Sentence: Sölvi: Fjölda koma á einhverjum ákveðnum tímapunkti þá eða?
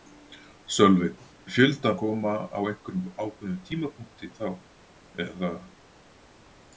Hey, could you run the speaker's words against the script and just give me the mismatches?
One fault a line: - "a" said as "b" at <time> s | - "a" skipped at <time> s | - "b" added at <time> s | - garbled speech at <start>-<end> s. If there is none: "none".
none